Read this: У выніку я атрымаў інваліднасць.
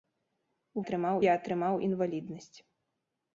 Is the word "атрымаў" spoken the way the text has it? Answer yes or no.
yes